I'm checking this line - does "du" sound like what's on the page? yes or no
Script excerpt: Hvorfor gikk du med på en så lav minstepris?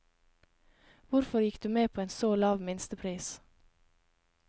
yes